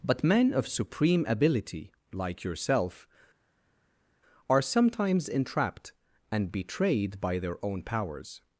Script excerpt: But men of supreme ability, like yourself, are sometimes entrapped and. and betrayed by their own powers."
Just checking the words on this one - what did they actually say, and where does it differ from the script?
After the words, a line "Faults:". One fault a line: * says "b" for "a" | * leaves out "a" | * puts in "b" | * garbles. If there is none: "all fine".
But men of supreme ability, like yourself, are sometimes entrapped and. betrayed by their own powers."
Faults:
* leaves out "and"